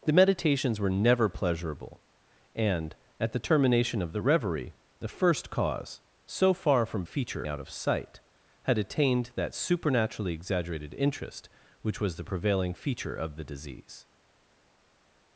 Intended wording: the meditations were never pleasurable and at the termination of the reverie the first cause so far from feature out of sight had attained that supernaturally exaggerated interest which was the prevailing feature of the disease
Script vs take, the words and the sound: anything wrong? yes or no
no